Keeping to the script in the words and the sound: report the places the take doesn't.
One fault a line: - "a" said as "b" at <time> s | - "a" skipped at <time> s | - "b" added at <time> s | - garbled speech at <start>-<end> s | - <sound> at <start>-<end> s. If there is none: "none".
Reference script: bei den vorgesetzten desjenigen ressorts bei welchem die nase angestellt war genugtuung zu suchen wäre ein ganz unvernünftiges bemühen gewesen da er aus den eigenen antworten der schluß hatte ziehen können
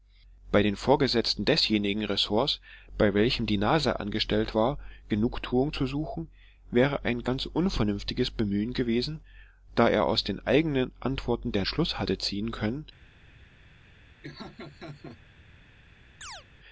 - laugh at 14.2-15.2 s
- chirp at 16.2-16.4 s